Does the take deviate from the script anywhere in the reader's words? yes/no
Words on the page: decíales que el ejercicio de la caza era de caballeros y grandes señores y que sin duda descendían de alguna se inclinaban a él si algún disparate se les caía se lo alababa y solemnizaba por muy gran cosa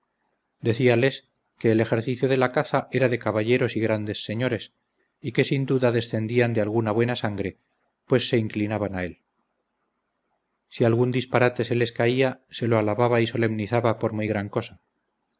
yes